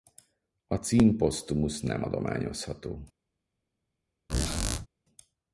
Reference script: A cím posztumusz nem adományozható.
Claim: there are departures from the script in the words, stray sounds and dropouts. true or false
true